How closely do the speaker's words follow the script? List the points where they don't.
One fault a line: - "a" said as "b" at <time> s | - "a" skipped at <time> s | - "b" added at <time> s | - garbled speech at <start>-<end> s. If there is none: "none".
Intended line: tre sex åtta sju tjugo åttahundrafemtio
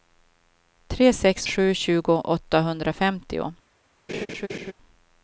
- "åtta" skipped at 1.5 s